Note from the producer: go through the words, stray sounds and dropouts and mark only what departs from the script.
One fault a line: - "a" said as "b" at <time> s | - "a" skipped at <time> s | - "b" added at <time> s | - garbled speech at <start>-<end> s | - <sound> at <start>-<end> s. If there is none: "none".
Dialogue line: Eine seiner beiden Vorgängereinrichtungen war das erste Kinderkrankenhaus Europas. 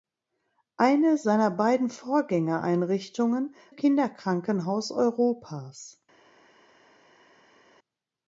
- "war das erste" skipped at 3.5 s